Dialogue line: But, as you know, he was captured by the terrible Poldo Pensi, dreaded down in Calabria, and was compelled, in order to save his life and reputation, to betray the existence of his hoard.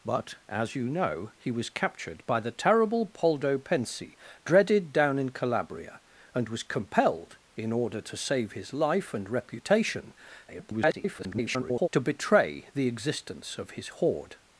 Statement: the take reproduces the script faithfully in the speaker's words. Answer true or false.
false